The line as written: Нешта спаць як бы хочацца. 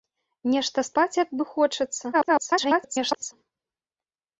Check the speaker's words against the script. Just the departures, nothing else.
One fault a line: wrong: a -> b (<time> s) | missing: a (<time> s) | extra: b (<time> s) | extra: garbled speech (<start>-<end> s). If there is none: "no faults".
extra: garbled speech (2.1-3.3 s)